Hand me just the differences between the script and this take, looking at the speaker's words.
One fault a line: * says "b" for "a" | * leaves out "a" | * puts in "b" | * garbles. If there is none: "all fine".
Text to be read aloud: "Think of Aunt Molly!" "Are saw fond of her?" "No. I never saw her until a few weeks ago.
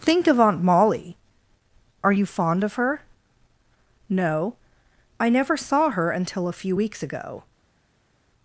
* says "you" for "saw"